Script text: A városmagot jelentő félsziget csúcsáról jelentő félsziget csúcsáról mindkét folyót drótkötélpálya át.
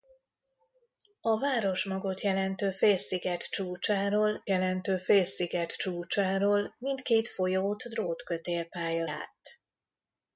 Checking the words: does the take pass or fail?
pass